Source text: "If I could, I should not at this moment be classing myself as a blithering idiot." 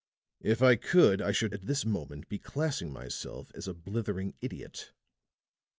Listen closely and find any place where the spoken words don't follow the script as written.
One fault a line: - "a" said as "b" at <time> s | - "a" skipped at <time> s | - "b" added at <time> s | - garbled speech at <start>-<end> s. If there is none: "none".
- "not" skipped at 1.6 s